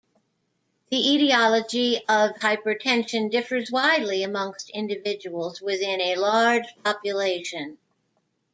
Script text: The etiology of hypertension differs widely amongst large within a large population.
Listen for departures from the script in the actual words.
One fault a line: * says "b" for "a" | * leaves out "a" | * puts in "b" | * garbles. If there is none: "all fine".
* says "individuals" for "large"